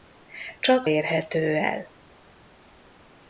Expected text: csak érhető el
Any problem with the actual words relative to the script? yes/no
no